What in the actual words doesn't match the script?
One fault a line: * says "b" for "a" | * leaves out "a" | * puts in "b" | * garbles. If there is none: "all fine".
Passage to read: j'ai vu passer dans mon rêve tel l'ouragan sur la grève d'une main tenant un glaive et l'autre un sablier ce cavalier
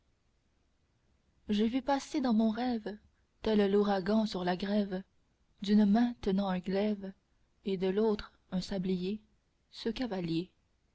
* puts in "de"